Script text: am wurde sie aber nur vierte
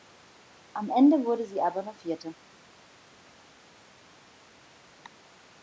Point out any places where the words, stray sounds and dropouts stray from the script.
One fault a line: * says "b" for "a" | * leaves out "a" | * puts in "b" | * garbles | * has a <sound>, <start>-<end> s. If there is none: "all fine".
* puts in "ende"